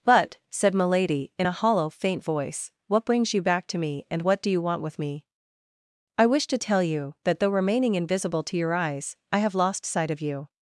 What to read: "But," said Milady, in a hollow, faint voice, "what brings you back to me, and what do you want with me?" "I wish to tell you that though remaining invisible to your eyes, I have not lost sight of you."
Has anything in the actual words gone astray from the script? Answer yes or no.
yes